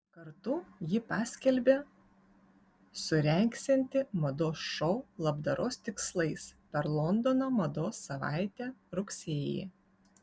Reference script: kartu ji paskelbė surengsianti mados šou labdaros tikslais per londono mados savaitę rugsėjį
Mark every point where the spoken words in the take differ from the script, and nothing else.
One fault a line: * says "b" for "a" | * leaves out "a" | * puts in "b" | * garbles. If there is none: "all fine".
all fine